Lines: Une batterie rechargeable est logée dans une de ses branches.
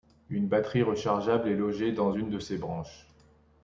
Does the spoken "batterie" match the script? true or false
true